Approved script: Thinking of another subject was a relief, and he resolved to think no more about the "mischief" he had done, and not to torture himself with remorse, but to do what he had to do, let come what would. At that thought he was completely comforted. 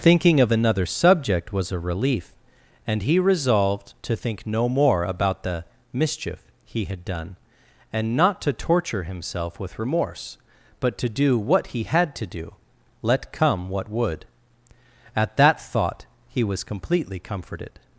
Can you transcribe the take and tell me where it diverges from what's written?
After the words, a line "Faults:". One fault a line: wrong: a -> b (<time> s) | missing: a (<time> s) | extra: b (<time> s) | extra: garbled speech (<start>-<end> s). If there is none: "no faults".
Thinking of another subject was a relief, and he resolved to think no more about the "mischief" he had done, and not to torture himself with remorse, but to do what he had to do, let come what would. At that thought he was completely comforted.
Faults:
no faults